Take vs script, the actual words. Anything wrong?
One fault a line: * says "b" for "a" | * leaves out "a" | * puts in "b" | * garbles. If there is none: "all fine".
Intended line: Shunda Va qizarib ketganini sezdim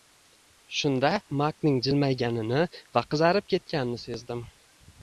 * puts in "Makning jilmayganini"